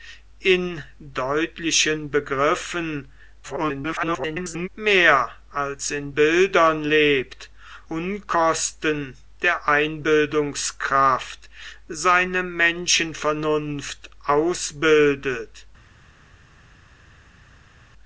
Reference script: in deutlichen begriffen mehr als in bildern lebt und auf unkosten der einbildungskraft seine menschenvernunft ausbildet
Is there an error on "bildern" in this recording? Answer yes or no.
no